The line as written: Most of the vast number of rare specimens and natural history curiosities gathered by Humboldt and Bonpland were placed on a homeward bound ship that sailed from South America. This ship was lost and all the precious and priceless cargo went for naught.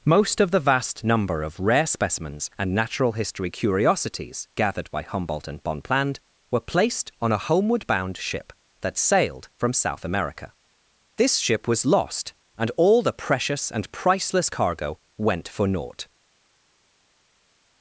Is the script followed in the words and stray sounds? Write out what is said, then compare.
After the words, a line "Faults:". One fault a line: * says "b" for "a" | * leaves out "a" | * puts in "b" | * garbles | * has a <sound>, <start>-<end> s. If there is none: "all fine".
Most of the vast number of rare specimens and natural history curiosities gathered by Humboldt and Bonpland were placed on a homeward bound ship that sailed from South America. This ship was lost and all the precious and priceless cargo went for naught.
Faults:
all fine